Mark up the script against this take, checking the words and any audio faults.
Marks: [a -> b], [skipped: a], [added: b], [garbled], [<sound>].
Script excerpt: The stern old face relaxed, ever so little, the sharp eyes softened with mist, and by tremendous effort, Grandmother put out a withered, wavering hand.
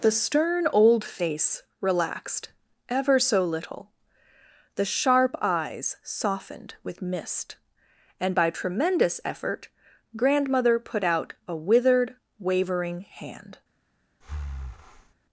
The stern old face relaxed, ever so little, the sharp eyes softened with mist, and by tremendous effort, Grandmother put out a withered, wavering hand. [breath]